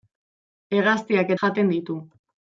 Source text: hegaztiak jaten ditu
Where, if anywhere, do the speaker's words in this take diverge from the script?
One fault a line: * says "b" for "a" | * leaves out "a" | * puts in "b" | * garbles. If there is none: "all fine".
all fine